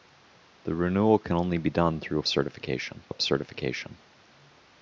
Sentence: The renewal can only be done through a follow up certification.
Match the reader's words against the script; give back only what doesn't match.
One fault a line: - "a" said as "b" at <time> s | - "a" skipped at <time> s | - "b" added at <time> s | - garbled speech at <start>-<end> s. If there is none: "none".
- "follow" said as "certification" at 2.3 s